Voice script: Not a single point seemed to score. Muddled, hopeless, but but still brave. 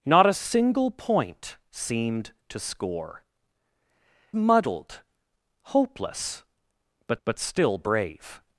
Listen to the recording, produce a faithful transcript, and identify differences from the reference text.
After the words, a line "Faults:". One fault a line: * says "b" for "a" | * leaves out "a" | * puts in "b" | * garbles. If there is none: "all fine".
Not a single point seemed to score. Muddled, hopeless, but but still brave.
Faults:
all fine